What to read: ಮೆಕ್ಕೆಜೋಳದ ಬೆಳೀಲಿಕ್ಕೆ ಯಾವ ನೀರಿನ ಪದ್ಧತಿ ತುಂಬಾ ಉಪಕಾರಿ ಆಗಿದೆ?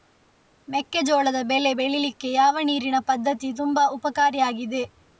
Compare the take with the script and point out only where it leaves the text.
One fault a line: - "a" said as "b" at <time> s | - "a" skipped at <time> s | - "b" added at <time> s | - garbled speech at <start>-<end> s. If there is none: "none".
- "ಬೆಳೆ" added at 1.4 s